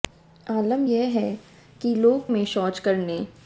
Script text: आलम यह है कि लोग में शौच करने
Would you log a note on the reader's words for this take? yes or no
no